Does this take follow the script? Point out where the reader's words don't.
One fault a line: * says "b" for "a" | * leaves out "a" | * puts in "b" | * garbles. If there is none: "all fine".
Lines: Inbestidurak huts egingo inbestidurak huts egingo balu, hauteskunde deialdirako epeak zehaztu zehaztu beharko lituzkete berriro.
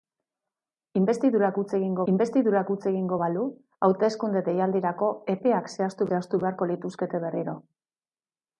all fine